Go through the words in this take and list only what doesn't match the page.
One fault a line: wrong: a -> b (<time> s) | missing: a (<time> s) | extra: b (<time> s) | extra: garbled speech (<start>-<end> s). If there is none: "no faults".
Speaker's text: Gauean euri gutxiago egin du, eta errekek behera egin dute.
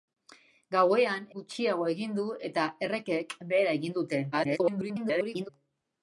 missing: euri (1.3 s)
extra: garbled speech (4.3-5.5 s)